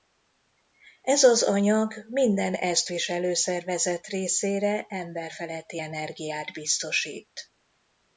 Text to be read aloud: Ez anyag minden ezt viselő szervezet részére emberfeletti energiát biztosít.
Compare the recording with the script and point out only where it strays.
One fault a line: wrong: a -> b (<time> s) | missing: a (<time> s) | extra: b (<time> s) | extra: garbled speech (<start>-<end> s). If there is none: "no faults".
extra: az (1.2 s)